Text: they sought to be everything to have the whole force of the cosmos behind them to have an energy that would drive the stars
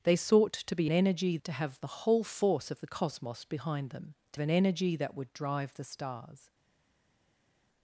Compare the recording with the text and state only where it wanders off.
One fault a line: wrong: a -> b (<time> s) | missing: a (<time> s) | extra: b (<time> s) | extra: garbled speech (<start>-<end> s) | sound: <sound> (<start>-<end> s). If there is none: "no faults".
wrong: everything -> energy (0.9 s)
missing: have (4.4 s)